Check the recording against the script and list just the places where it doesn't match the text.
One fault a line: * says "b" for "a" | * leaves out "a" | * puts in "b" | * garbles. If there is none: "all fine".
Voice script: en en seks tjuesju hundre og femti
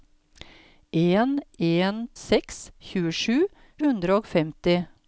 all fine